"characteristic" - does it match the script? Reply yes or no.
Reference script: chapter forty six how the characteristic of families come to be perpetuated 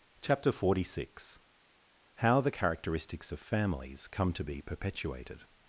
no